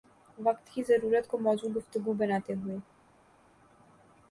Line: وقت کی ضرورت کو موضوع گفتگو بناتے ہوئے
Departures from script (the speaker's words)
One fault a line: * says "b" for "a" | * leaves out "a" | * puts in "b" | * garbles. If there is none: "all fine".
all fine